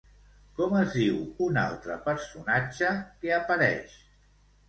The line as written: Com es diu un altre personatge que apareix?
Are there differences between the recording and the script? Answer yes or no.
no